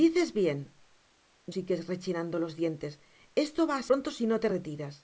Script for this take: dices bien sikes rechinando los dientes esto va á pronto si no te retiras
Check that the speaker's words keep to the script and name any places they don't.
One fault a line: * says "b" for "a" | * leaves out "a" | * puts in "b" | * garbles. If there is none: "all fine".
all fine